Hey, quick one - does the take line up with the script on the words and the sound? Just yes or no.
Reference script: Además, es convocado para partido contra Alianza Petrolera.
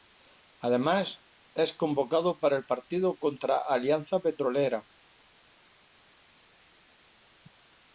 no